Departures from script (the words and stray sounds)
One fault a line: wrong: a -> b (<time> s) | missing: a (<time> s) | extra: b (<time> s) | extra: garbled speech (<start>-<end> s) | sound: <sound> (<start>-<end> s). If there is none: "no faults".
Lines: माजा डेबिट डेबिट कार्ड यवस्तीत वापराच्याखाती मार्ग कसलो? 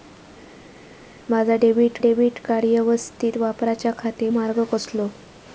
no faults